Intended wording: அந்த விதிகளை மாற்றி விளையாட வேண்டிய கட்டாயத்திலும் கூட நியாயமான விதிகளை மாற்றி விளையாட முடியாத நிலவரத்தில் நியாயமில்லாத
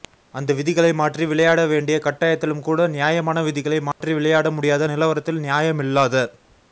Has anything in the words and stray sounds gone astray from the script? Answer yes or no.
yes